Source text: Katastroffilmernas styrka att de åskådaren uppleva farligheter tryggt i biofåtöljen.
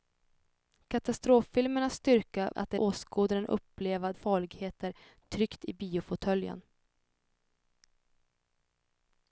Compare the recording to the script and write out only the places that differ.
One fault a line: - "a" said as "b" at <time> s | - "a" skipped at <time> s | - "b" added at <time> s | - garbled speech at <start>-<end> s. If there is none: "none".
none